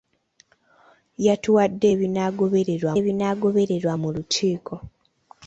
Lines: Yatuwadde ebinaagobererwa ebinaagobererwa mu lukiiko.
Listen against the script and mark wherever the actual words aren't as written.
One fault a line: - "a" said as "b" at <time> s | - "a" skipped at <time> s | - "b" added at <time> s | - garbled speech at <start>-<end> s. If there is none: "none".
none